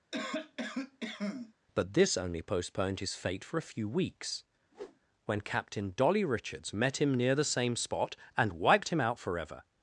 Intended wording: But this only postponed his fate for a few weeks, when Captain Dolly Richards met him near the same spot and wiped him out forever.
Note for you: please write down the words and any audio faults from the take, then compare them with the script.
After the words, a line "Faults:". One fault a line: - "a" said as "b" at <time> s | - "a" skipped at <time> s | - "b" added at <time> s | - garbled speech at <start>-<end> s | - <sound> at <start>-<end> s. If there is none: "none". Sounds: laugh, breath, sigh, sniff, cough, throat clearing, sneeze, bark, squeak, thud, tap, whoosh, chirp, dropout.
But this only postponed his fate for a few weeks, when Captain Dolly Richards met him near the same spot and wiped him out forever.
Faults:
- cough at 0.1-1.5 s
- whoosh at 4.7-5.0 s